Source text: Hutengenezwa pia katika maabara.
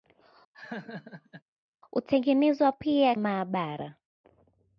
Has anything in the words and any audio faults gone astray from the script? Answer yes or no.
yes